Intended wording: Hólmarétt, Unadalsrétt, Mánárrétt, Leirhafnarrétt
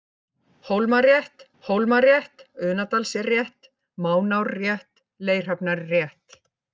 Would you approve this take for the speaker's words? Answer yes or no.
no